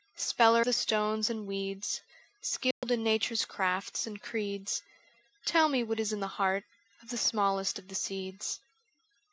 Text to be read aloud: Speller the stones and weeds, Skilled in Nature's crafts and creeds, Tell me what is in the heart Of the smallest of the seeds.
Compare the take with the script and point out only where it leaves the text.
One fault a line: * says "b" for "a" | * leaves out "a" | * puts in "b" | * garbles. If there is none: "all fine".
all fine